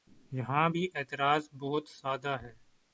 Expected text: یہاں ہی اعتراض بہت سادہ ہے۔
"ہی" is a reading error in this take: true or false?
true